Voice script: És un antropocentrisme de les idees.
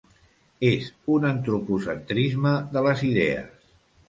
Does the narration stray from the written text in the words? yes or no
no